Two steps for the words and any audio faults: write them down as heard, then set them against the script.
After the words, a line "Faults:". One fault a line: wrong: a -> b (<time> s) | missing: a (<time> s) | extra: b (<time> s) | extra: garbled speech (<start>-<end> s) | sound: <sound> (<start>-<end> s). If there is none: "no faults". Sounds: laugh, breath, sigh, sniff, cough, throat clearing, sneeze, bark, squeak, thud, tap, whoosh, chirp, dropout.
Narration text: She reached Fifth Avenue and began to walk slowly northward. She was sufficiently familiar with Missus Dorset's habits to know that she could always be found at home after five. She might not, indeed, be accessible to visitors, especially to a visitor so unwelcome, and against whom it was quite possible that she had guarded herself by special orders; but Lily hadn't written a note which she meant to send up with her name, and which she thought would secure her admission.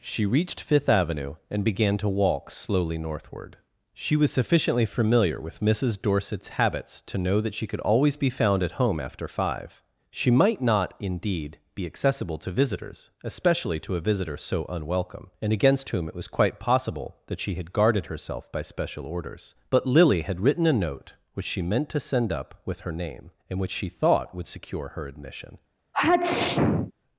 She reached Fifth Avenue and began to walk slowly northward. She was sufficiently familiar with Missus Dorset's habits to know that she could always be found at home after five. She might not, indeed, be accessible to visitors, especially to a visitor so unwelcome, and against whom it was quite possible that she had guarded herself by special orders; but Lily had written a note which she meant to send up with her name, and which she thought would secure her admission.
Faults:
wrong: hadn't -> had (20.2 s)
sound: sneeze (25.9-26.9 s)